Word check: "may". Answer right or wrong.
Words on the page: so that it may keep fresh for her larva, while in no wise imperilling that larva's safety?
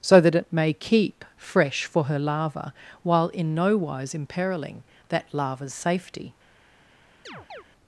right